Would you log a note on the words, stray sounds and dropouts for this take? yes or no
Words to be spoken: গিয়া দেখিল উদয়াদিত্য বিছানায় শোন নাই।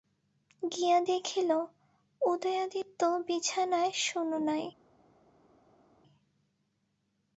no